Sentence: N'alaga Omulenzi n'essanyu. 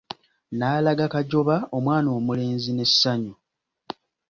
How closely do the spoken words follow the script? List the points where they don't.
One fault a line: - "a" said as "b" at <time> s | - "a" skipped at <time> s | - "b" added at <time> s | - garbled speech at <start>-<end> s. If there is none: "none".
- "Kajoba omwana" added at 1.1 s